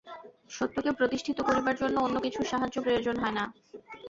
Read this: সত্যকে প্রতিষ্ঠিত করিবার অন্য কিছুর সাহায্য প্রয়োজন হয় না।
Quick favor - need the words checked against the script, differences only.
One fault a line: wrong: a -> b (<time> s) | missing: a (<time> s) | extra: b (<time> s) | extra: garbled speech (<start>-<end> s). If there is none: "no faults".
extra: জন্য (1.8 s)